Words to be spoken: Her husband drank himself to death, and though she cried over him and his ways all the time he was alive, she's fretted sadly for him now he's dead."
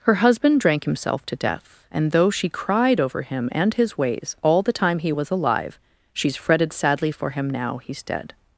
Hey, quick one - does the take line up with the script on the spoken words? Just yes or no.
yes